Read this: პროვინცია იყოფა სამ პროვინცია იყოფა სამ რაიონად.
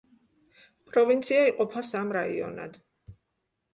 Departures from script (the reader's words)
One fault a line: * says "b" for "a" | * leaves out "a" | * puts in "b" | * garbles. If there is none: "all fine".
* leaves out "პროვინცია იყოფა სამ"